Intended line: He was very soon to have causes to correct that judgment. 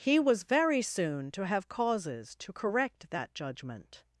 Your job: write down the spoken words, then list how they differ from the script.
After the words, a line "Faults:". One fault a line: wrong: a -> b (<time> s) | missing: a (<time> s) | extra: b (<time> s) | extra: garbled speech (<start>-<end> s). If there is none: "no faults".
He was very soon to have causes to correct that judgment.
Faults:
no faults